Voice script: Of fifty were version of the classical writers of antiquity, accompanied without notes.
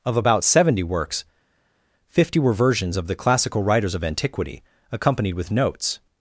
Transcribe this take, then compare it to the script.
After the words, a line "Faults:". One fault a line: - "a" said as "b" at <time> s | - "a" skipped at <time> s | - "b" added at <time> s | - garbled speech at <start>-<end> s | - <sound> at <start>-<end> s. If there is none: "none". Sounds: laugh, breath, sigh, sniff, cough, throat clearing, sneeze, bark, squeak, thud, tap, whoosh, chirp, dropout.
Of about seventy works, fifty were versions of the classical writers of antiquity, accompanied with notes.
Faults:
- "about seventy works" added at 0.2 s
- "version" said as "versions" at 2.5 s
- "without" said as "with" at 5.3 s